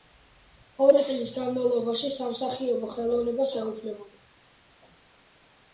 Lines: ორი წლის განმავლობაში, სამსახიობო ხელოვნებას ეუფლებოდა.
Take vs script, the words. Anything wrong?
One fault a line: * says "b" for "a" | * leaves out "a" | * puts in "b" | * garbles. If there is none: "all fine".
all fine